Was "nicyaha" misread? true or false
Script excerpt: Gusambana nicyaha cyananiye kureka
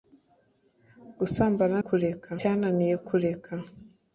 true